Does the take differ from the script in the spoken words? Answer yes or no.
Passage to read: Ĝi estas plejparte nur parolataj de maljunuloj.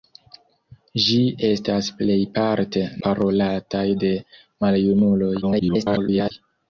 yes